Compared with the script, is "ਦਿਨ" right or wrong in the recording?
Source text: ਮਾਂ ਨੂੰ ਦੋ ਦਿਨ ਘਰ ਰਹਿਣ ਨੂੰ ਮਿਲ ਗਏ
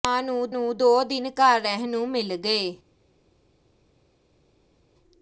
right